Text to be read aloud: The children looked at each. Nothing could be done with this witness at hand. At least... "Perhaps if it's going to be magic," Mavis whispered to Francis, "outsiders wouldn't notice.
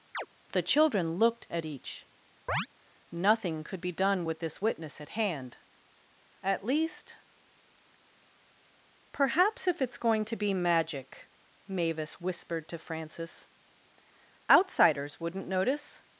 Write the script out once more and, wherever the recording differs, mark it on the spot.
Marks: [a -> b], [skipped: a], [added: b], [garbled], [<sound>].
[chirp] The children looked at each. [chirp] Nothing could be done with this witness at hand. At least... "Perhaps if it's going to be magic," Mavis whispered to Francis, "outsiders wouldn't notice.